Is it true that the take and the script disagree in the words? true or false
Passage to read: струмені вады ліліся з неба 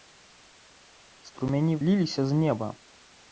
true